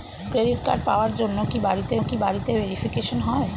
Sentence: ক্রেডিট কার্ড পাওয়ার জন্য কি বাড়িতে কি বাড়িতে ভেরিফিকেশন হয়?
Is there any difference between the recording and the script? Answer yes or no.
no